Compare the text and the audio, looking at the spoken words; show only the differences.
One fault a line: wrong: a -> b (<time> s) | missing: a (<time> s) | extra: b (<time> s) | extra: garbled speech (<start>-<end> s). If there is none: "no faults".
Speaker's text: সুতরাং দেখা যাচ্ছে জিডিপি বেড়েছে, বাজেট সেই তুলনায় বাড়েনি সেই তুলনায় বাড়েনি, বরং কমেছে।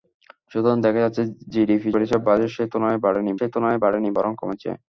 no faults